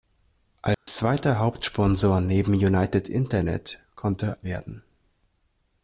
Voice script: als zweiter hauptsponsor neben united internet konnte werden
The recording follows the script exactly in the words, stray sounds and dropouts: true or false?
false